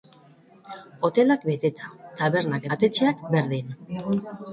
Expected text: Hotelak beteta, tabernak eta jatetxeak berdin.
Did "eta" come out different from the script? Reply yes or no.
yes